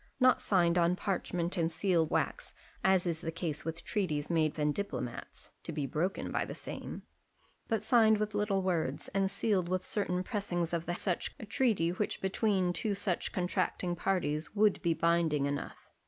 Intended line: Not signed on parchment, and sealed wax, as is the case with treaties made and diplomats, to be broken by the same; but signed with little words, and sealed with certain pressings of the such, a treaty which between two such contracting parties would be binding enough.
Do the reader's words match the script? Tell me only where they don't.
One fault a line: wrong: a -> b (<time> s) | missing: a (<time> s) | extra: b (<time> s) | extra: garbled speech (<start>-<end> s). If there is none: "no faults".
no faults